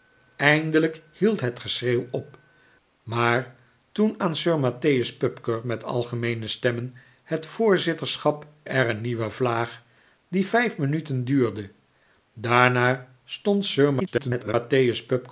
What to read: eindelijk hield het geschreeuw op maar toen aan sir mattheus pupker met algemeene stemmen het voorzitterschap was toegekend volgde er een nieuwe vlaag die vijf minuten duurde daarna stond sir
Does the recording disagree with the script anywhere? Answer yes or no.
yes